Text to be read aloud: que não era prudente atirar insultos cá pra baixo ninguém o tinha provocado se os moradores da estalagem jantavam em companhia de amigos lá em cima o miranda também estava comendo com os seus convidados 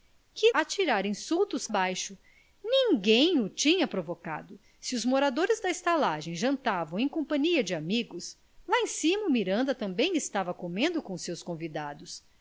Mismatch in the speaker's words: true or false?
true